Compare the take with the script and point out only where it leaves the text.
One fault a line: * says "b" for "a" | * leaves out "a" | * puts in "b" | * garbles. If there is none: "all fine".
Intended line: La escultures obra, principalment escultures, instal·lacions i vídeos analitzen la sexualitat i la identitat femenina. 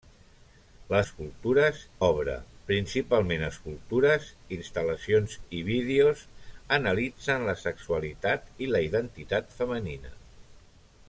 all fine